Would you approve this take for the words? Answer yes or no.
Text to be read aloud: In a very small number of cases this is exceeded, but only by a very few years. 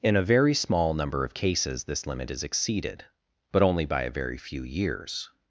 no